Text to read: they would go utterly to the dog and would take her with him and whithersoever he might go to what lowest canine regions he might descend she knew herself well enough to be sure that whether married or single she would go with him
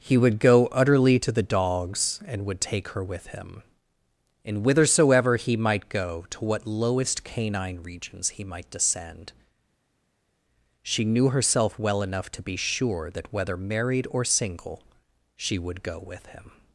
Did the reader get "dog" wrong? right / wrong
wrong